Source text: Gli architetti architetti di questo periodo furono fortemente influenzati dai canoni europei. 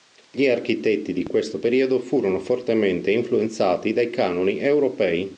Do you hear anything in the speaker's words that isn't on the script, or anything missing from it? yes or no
yes